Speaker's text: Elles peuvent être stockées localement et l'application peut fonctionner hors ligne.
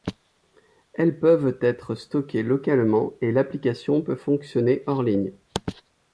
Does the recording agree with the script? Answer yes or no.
yes